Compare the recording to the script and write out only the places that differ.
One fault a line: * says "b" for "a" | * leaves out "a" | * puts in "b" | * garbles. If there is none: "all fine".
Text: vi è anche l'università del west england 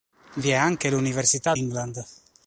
* leaves out "del west"